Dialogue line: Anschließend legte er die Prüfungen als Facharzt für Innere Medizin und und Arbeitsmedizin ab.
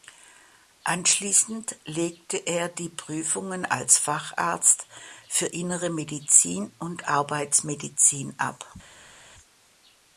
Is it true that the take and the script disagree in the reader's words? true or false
true